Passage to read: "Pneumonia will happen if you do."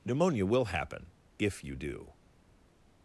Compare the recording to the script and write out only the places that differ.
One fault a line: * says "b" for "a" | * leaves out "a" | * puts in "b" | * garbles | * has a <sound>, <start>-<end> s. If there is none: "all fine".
all fine